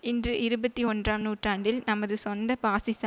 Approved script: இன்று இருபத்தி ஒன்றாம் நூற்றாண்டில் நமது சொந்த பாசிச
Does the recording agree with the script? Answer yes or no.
yes